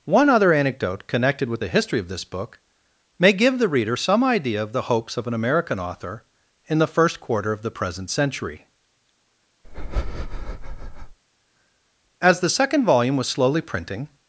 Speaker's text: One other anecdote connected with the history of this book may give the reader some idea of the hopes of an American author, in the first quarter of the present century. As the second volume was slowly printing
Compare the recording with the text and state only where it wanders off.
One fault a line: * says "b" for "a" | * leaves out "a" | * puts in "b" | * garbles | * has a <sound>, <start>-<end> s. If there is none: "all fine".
* has a breath, 9.6-11.2 s